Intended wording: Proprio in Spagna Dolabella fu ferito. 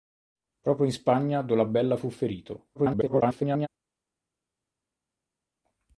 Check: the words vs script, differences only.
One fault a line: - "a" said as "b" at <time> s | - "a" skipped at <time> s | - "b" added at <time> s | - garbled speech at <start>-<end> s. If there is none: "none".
- garbled speech at 2.7-3.7 s